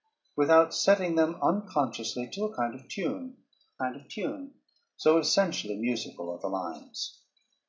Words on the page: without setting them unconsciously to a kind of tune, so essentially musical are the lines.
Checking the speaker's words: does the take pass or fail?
fail